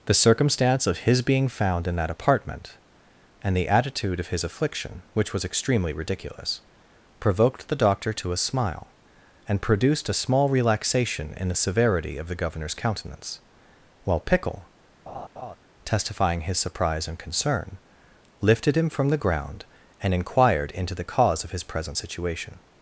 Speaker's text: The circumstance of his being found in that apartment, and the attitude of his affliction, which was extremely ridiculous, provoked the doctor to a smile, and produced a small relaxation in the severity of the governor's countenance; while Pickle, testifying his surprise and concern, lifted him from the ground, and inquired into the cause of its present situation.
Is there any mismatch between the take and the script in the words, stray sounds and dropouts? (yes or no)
yes